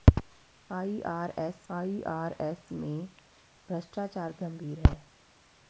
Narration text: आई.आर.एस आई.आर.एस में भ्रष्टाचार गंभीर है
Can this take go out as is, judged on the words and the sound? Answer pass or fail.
pass